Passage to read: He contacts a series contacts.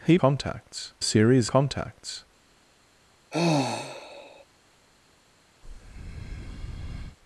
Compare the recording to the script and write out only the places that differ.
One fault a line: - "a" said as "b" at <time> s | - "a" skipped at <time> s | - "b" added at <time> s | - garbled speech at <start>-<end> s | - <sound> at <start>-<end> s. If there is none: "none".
- sigh at 3.3-4.4 s
- breath at 5.6-7.2 s